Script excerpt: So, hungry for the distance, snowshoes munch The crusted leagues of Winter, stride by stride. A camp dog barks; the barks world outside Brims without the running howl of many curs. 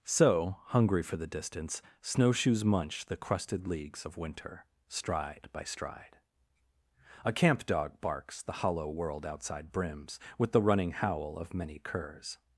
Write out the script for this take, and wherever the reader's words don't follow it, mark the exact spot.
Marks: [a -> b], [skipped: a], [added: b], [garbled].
So, hungry for the distance, snowshoes munch The crusted leagues of Winter, stride by stride. A camp dog barks; the [barks -> hollow] world outside Brims [without -> with] the running howl of many curs.